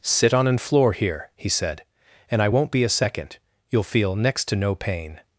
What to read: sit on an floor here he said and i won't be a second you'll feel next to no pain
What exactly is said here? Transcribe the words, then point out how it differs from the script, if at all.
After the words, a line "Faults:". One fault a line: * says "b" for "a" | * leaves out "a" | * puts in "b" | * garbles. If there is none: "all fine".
sit on an floor here he said and i won't be a second you'll feel next to no pain
Faults:
all fine